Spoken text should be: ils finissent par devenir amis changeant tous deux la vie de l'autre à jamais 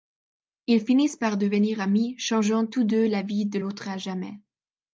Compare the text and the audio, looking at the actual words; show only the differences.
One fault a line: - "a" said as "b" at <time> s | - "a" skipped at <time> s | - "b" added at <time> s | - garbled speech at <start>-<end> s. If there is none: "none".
none